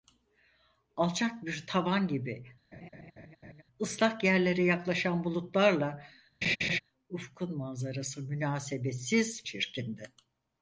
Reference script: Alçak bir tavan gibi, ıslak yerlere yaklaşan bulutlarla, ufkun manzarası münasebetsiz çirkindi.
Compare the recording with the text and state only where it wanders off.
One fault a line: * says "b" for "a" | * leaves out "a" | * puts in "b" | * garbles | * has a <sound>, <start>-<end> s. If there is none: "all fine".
* has a laugh, 2.7-3.6 s
* has a laugh, 6.4-6.8 s